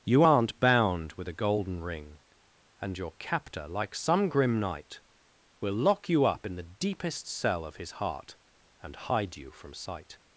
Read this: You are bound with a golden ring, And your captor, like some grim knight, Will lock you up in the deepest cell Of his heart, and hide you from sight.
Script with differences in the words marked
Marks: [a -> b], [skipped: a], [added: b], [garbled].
You [are -> aren't] bound with a golden ring, And your captor, like some grim knight, Will lock you up in the deepest cell Of his heart, and hide you from sight.